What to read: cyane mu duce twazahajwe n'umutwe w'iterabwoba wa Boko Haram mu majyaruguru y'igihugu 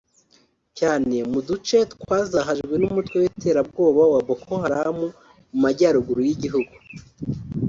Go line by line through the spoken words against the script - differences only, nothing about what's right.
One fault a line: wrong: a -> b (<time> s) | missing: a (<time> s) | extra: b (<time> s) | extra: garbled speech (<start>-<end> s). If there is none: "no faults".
no faults